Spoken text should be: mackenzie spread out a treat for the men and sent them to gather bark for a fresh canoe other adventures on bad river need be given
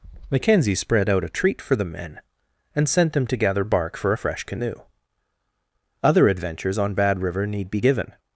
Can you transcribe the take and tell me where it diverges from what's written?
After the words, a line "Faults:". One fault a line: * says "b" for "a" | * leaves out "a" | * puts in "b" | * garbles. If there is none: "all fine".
mackenzie spread out a treat for the men and sent them to gather bark for a fresh canoe other adventures on bad river need be given
Faults:
all fine